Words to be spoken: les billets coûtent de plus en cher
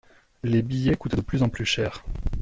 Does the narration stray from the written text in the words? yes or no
yes